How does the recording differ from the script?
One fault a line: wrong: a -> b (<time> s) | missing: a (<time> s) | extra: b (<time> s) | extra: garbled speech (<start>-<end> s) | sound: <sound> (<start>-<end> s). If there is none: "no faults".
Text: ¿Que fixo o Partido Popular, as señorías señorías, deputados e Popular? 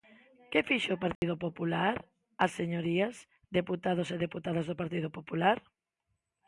sound: dropout (1.2-1.2 s)
missing: señorías (3.1 s)
extra: deputadas do Partido (4.2 s)